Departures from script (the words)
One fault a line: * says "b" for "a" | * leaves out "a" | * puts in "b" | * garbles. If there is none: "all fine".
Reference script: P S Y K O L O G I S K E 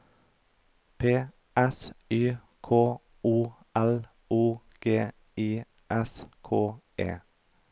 all fine